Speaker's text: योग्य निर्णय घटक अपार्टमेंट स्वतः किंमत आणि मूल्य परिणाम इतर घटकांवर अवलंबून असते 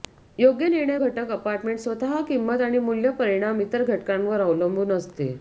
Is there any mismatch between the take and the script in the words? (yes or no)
no